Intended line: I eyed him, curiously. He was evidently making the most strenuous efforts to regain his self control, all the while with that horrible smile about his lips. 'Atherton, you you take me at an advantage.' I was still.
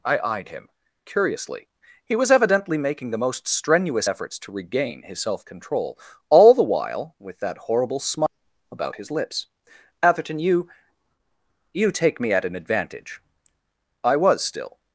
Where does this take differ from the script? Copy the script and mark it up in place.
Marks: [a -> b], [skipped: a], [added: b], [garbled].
I eyed him, curiously. He was evidently making the most strenuous efforts to regain his self control, all the while with that horrible smile about his lips. 'Atherton, you you take me at an advantage.' I was still.